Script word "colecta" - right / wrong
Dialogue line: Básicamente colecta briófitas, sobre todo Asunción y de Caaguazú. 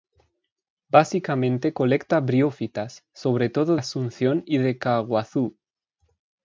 right